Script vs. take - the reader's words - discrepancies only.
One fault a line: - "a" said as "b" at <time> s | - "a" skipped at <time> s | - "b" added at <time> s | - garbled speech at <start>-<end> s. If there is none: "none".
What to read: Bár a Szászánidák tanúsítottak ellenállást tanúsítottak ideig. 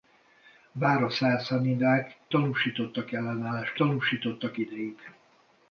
none